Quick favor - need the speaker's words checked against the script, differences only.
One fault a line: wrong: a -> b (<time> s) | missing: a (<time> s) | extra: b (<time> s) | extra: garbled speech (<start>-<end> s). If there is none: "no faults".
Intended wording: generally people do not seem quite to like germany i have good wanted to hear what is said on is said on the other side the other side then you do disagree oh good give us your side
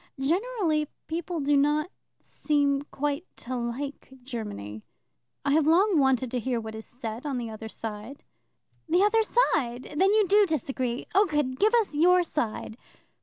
wrong: good -> long (5.7 s)
missing: is said on (7.4 s)